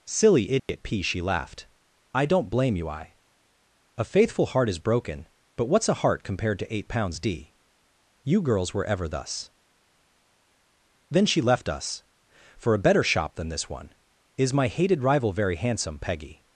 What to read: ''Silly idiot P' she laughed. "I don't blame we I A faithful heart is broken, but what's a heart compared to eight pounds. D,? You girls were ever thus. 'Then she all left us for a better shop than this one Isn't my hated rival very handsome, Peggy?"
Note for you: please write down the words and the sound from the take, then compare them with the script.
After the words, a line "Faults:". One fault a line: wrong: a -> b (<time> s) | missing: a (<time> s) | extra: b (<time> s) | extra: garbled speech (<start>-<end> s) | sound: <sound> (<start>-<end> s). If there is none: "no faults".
''Silly idiot P' she laughed. "I don't blame you I A faithful heart is broken, but what's a heart compared to eight pounds. D,? You girls were ever thus. 'Then she left us for a better shop than this one Is my hated rival very handsome, Peggy?"
Faults:
sound: dropout (0.6-0.7 s)
wrong: we -> you (2.8 s)
missing: all (11.4 s)
wrong: Isn't -> Is (14.4 s)